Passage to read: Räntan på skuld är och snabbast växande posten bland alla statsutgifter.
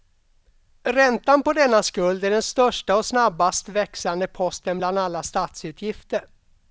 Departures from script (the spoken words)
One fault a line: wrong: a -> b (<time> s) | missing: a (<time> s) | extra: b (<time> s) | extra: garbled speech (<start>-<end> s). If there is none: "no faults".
extra: denna (1.5 s)
extra: den största (2.3 s)